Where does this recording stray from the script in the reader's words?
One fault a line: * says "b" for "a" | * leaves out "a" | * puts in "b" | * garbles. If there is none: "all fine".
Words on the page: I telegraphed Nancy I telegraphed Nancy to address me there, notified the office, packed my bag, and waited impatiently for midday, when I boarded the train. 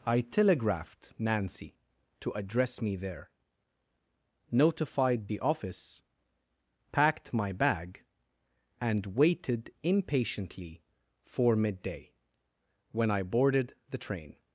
* leaves out "I telegraphed Nancy"